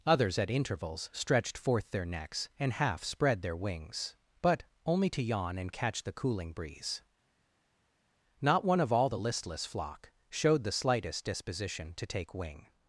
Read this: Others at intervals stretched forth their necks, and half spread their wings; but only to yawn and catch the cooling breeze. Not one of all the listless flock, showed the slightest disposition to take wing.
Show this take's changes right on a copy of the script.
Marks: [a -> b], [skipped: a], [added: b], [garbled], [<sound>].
Others at intervals stretched forth their necks, and half spread their wings; but only to yawn and catch the cooling breeze. Not one of all the listless flock, showed the slightest disposition to take wing.